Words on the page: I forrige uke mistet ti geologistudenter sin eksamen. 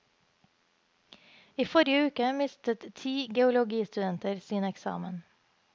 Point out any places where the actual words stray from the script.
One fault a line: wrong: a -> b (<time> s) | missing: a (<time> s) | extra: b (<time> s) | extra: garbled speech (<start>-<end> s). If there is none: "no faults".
no faults